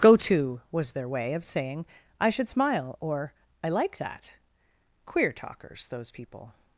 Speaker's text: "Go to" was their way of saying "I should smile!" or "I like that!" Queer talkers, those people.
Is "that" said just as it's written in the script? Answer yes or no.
yes